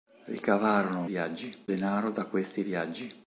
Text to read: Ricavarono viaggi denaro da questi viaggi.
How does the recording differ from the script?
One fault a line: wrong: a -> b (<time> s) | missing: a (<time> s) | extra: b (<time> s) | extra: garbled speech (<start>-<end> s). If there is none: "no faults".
no faults